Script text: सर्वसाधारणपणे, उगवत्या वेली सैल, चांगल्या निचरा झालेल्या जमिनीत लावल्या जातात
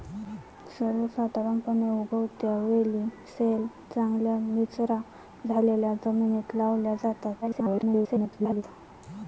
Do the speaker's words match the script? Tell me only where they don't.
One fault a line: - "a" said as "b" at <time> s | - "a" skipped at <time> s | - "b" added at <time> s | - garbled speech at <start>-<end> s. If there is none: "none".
- garbled speech at 7.4-8.6 s